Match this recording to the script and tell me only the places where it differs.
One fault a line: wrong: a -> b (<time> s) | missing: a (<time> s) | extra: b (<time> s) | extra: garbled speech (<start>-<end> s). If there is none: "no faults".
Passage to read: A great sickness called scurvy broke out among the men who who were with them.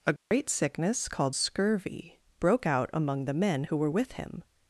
missing: who (3.8 s)
wrong: them -> him (4.1 s)